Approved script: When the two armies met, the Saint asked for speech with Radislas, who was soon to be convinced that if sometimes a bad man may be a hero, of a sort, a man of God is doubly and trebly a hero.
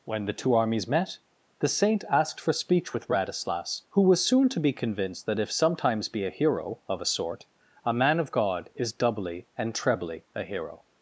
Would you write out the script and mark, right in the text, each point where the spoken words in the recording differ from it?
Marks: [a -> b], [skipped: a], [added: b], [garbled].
When the two armies met, the Saint asked for speech with Radislas, who was soon to be convinced that if sometimes [skipped: a bad man may] be a hero, of a sort, a man of God is doubly and trebly a hero.